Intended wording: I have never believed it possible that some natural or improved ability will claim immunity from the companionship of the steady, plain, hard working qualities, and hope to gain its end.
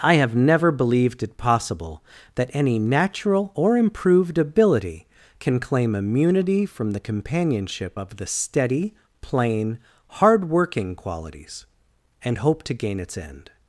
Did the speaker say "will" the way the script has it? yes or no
no